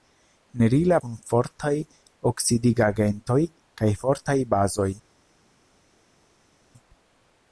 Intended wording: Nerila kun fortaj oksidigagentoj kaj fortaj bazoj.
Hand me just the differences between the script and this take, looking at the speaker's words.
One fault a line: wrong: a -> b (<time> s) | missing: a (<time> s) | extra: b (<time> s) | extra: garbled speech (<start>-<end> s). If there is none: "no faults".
no faults